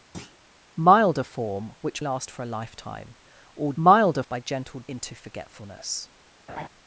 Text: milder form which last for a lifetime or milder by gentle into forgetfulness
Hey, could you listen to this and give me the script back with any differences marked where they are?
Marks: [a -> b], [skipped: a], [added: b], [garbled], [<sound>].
[thud] milder form which last for a lifetime or milder by gentle into forgetfulness [laugh]